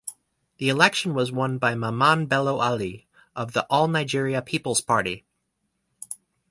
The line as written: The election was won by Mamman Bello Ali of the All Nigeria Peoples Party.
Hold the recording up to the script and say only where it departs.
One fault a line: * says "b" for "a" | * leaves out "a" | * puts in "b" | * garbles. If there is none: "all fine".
all fine